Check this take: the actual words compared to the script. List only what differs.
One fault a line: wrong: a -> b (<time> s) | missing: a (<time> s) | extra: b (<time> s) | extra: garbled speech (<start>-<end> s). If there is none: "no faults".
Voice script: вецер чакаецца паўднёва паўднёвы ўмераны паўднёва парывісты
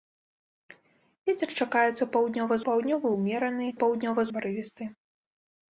no faults